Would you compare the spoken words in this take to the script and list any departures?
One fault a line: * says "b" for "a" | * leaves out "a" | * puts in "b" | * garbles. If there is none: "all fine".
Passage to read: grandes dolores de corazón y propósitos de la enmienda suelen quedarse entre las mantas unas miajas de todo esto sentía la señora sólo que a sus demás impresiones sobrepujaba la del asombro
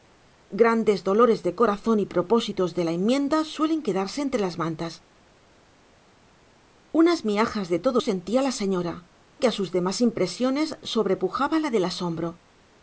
* leaves out "esto"
* leaves out "sólo"